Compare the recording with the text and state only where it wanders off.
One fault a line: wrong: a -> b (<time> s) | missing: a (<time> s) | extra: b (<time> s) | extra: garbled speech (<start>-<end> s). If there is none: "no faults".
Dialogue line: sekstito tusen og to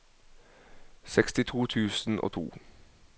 no faults